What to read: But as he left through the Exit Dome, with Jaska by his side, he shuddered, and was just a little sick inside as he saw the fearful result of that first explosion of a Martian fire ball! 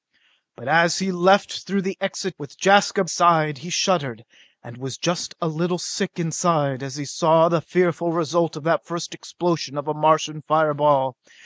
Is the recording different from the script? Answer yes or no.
yes